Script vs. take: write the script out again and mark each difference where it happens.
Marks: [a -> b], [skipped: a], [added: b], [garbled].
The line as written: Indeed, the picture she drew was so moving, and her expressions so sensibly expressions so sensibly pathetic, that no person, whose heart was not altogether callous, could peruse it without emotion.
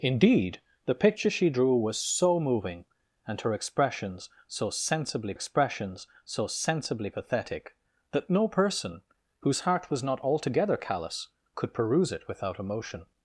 Indeed, the picture she drew was so moving, and her expressions so sensibly expressions so sensibly pathetic, that no person, whose heart was not altogether callous, could peruse it without emotion.